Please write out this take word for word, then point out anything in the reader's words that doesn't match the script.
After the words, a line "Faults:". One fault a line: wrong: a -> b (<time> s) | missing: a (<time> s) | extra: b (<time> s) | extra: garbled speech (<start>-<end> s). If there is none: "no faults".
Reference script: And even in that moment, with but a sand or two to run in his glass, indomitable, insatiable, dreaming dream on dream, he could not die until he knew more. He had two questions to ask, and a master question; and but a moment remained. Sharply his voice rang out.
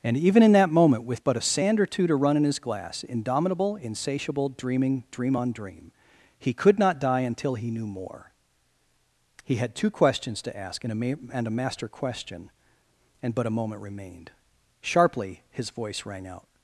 And even in that moment, with but a sand or two to run in his glass, indomitable, insatiable, dreaming dream on dream, he could not die until he knew more. He had two questions to ask, and a ma and a master question; and but a moment remained. Sharply his voice rang out.
Faults:
extra: ma and a (10.9 s)